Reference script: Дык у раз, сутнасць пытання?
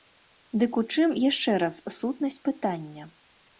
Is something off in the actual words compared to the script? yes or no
yes